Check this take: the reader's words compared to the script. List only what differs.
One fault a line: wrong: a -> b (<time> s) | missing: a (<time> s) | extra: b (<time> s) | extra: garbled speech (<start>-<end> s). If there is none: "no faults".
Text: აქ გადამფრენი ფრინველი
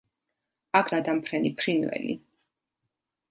no faults